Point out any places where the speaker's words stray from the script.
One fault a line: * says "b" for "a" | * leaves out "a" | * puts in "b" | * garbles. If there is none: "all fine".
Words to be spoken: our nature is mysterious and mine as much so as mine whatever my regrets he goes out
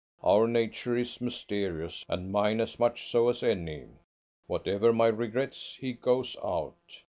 * says "any" for "mine"